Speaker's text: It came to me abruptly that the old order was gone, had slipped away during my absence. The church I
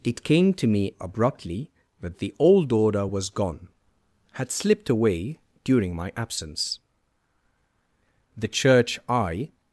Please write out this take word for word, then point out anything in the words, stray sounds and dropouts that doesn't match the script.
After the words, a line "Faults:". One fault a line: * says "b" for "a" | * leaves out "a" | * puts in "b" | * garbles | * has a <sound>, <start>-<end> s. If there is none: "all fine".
It came to me abruptly that the old order was gone, had slipped away during my absence. The church I
Faults:
all fine